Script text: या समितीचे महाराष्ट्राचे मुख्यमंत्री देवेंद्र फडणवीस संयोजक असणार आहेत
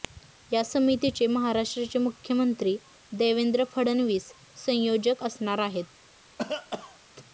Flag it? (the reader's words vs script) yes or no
no